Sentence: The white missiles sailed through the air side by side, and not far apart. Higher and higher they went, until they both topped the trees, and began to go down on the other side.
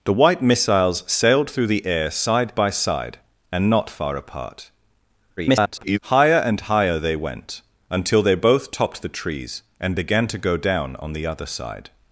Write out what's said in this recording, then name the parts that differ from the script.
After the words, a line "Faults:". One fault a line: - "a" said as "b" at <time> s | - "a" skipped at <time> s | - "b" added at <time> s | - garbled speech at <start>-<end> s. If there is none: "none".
The white missiles sailed through the air side by side, and not far apart. [garbled] Higher and higher they went, until they both topped the trees, and began to go down on the other side.
Faults:
- garbled speech at 5.4-6.0 s